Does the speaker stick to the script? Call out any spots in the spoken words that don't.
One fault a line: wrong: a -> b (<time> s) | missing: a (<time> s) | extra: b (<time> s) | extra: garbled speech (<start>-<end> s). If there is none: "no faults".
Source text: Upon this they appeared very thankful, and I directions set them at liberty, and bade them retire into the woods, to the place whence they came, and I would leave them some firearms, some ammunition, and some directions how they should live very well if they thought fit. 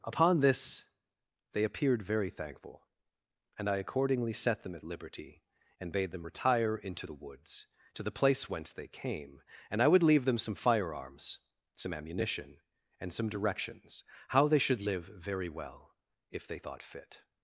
wrong: directions -> accordingly (3.8 s)